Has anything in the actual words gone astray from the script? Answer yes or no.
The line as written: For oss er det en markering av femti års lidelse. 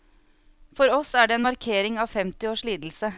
no